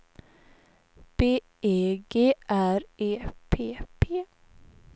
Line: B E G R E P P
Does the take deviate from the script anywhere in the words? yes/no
no